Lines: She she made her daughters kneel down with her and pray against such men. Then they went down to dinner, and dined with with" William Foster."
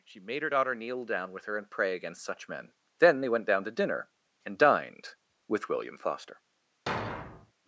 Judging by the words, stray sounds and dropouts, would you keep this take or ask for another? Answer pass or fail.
fail